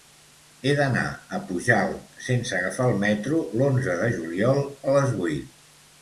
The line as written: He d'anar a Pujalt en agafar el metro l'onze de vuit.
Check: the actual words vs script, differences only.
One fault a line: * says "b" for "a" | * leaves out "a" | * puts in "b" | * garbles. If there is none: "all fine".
* says "sense" for "en"
* puts in "juliol a les"